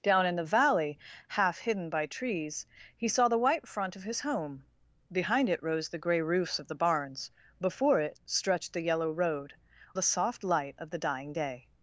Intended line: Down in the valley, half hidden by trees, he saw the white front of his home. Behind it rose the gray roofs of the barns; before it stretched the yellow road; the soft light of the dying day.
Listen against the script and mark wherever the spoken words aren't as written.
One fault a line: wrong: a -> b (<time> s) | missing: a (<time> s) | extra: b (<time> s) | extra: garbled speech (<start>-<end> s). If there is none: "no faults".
no faults